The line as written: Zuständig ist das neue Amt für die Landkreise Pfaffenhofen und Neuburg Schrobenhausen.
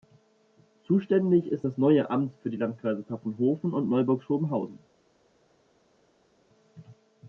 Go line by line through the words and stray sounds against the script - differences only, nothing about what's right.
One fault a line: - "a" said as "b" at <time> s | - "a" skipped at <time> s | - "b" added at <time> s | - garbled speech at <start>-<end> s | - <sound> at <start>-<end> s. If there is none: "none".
none